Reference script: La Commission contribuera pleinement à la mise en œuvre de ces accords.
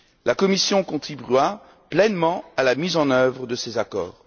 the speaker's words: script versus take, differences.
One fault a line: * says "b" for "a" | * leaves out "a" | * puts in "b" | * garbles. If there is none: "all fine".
all fine